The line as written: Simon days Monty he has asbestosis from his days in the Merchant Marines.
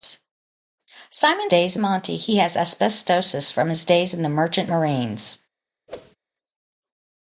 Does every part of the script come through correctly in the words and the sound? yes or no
no